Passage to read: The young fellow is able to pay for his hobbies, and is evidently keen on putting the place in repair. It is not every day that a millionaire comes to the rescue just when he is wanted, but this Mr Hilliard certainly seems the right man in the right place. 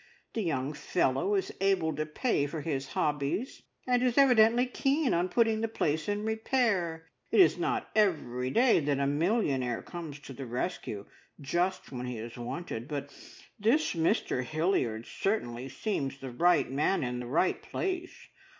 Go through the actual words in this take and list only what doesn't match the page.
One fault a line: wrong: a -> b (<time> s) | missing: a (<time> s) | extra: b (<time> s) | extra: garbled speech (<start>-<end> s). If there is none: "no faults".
no faults